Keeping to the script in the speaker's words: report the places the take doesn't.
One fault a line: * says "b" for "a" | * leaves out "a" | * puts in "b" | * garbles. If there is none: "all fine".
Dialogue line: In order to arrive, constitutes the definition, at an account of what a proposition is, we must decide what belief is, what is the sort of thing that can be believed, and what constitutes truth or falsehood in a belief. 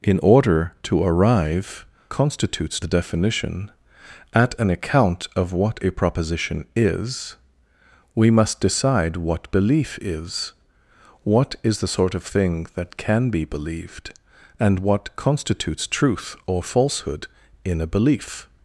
all fine